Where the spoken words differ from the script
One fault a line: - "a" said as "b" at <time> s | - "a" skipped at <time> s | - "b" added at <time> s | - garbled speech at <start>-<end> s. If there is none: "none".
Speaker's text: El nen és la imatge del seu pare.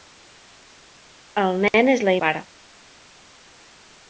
- "imatge del seu" skipped at 2.1 s